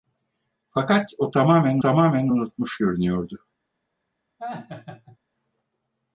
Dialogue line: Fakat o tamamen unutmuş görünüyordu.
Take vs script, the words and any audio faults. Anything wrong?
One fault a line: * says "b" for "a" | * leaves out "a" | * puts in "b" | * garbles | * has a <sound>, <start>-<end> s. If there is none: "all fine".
* puts in "tamamen"
* has a laugh, 4.4-5.2 s